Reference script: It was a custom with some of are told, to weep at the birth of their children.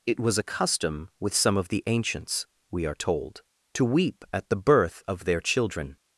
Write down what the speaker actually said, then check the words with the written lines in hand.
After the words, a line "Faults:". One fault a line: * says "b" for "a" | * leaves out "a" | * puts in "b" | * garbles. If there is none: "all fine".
It was a custom with some of the ancients, we are told, to weep at the birth of their children.
Faults:
* puts in "the ancients we"